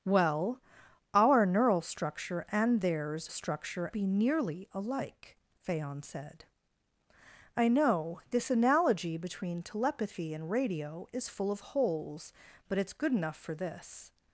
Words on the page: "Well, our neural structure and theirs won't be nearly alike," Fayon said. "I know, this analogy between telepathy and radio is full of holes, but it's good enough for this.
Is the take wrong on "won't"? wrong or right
wrong